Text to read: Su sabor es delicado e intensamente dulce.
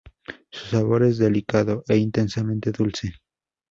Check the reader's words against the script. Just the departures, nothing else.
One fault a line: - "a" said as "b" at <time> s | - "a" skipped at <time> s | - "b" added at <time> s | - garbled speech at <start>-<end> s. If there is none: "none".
none